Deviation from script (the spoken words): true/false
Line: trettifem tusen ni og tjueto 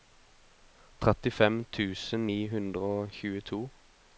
true